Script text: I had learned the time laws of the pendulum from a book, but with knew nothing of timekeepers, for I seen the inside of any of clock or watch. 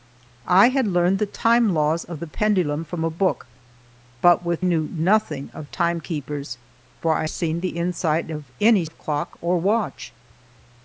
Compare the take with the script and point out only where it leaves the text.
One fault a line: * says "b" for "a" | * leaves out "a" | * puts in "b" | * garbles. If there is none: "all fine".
all fine